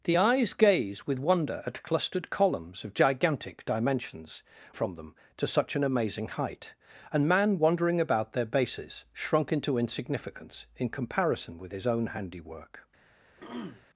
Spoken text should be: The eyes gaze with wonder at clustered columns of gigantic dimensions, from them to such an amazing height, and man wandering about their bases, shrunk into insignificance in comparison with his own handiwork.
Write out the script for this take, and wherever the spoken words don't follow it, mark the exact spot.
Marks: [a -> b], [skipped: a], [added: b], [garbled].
The eyes gaze with wonder at clustered columns of gigantic dimensions, from them to such an amazing height, and man wandering about their bases, shrunk into insignificance in comparison with his own handiwork.